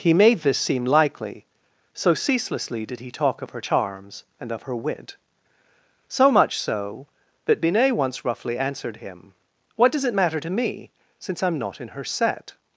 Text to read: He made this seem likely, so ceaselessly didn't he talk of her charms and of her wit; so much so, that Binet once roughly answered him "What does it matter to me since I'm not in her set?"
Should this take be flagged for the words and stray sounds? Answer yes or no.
yes